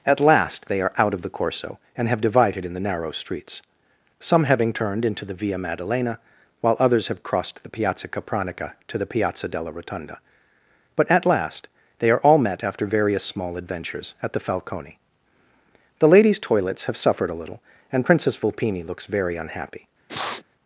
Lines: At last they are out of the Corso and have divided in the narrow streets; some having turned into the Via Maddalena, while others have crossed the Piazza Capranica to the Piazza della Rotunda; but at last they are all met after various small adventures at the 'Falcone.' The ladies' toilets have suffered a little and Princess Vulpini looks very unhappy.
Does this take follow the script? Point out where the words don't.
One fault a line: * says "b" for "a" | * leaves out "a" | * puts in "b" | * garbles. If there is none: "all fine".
all fine